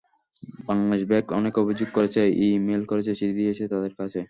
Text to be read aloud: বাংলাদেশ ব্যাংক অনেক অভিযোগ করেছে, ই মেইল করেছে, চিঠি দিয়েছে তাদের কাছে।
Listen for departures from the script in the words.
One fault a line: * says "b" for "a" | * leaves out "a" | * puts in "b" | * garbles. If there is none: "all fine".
all fine